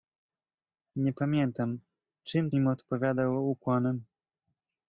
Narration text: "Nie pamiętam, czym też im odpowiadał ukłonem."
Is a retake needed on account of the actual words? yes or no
yes